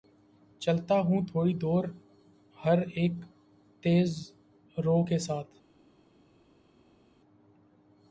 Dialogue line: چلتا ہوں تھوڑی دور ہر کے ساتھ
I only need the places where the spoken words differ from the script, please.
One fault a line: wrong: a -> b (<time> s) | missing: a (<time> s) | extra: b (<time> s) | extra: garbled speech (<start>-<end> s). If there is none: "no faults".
extra: اک تیز رو (3.0 s)